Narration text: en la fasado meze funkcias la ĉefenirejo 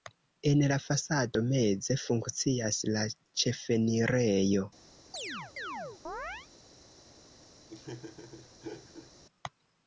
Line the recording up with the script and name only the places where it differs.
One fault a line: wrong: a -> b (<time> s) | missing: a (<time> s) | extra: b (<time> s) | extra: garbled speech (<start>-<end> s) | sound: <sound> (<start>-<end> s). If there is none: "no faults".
sound: chirp (5.1-6.5 s)
sound: laugh (7.6-9.1 s)